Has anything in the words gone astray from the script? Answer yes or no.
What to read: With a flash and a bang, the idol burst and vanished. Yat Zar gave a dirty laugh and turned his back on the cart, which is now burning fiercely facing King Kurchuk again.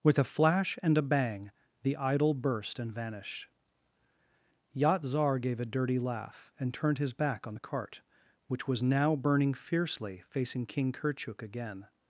yes